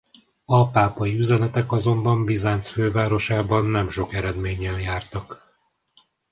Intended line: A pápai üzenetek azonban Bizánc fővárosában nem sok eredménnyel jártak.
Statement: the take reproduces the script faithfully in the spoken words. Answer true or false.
true